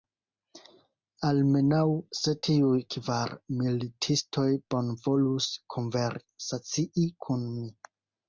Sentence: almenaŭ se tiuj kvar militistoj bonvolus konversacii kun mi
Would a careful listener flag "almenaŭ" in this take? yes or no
no